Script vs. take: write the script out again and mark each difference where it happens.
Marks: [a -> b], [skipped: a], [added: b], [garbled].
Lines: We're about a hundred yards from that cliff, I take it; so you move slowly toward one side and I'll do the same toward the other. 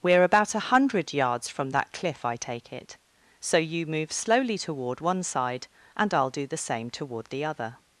We're about a hundred yards from that cliff, I take it; so you move slowly toward one side and I'll do the same toward the other.